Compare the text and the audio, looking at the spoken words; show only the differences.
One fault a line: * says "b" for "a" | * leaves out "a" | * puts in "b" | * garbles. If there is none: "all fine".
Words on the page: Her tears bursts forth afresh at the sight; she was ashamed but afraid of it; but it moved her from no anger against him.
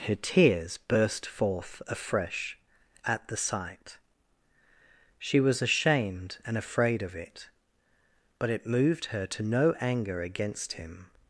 * says "burst" for "bursts"
* says "and" for "but"
* says "to" for "from"